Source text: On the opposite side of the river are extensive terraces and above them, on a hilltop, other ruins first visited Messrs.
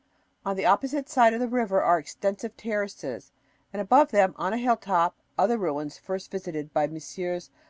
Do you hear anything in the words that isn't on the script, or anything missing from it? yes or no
yes